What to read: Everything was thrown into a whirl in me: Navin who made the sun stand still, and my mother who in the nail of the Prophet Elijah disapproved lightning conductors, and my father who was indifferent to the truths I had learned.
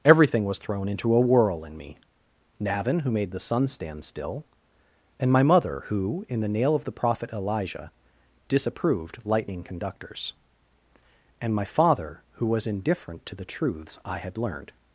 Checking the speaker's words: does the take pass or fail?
pass